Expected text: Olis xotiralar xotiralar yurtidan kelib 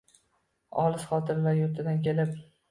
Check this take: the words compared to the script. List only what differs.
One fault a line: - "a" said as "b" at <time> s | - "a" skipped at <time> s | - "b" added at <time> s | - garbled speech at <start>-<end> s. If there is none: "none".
- "xotiralar" skipped at 1.6 s